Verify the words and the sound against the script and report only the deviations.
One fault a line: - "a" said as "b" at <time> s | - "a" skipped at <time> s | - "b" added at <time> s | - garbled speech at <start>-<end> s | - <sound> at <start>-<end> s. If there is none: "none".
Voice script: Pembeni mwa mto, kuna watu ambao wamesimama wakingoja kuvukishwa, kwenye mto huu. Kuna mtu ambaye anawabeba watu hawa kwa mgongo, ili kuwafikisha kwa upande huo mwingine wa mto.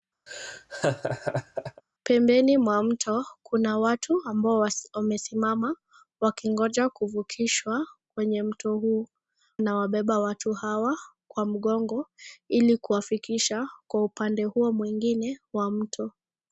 - laugh at 0.3-1.8 s
- "Kuna mtu ambaye" skipped at 9.1 s